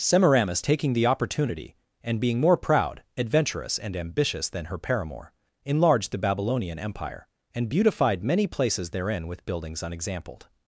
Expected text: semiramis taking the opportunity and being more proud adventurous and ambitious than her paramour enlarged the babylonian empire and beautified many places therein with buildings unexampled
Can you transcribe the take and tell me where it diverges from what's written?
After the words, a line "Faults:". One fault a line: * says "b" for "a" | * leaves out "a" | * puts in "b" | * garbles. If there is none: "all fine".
semiramis taking the opportunity and being more proud adventurous and ambitious than her paramour enlarged the babylonian empire and beautified many places therein with buildings unexampled
Faults:
all fine